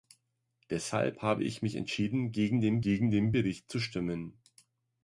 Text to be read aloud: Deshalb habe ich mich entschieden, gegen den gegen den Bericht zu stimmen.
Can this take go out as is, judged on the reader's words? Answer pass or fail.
pass